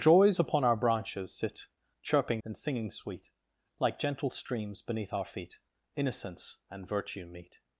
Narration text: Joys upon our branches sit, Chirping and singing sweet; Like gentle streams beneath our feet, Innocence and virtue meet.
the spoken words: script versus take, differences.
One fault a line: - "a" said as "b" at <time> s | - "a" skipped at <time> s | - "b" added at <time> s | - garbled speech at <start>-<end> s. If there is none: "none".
none